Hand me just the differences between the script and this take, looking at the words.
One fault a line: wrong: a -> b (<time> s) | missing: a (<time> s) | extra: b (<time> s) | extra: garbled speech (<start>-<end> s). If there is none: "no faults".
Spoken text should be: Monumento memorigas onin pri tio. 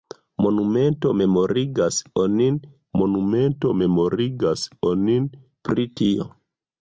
extra: monumento memorigas onin (3.0 s)